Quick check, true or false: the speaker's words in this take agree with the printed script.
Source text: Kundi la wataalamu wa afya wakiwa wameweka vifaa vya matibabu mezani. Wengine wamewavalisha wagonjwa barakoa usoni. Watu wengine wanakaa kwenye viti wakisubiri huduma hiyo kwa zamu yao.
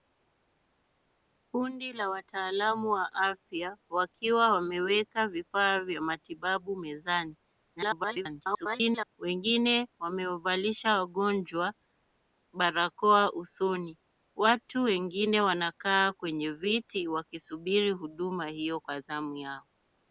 false